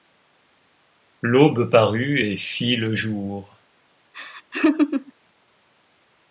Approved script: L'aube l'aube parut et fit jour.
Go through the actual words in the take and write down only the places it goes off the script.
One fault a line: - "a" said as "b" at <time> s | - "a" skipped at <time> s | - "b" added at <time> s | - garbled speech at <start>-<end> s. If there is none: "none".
- "l'aube" skipped at 1.7 s
- "le" added at 2.8 s